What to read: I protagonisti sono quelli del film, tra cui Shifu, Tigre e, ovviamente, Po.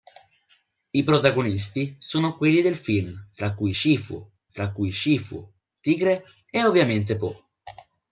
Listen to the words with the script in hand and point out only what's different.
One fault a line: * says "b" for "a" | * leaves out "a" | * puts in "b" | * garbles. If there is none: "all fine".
* puts in "tra cui Shifu"